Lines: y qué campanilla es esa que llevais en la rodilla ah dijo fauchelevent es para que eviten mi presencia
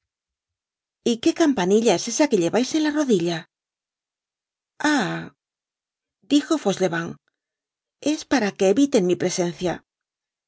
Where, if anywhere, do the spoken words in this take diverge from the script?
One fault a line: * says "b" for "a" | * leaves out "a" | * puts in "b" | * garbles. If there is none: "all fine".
all fine